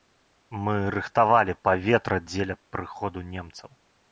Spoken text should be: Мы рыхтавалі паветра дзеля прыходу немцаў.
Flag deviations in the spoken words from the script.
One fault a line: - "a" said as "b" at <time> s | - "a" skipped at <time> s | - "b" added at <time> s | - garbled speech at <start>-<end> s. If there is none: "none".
none